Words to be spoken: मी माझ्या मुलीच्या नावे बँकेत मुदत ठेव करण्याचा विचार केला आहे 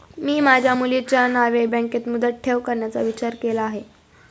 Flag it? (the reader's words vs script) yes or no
no